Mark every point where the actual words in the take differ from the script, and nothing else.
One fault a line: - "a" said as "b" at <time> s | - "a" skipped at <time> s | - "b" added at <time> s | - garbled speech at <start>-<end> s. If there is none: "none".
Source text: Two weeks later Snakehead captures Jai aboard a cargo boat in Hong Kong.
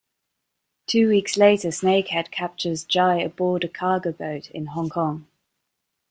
none